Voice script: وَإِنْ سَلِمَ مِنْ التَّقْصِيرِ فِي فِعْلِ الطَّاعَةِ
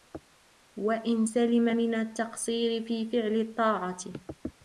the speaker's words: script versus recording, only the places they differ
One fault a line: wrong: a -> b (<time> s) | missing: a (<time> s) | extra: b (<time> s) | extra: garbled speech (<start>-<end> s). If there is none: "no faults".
no faults